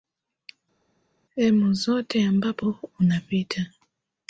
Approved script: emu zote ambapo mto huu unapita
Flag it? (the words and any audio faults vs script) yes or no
yes